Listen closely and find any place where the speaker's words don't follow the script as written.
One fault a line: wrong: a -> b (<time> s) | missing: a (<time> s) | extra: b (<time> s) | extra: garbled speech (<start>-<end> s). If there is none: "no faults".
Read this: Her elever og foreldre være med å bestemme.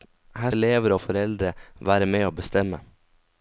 no faults